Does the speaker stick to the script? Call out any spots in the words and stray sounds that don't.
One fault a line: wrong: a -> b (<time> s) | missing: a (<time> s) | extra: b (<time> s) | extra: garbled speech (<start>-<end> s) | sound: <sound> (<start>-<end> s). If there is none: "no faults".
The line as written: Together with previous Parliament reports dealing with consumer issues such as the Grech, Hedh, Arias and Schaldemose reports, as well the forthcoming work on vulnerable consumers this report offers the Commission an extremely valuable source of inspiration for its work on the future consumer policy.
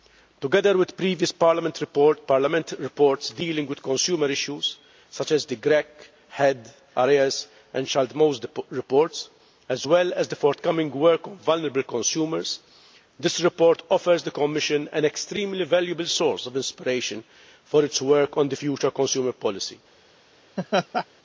extra: as (10.1 s)
sound: laugh (20.6-21.1 s)